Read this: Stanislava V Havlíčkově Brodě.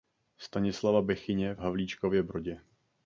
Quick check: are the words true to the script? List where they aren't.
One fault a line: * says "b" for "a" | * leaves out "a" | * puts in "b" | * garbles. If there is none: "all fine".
* puts in "Bechyně"